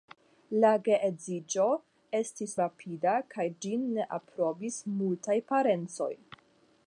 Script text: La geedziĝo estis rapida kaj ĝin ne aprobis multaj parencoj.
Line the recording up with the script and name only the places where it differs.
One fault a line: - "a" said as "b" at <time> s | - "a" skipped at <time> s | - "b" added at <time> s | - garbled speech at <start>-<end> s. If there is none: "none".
none